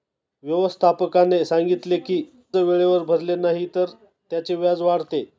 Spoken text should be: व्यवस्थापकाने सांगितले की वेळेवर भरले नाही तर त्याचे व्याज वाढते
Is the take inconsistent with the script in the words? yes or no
no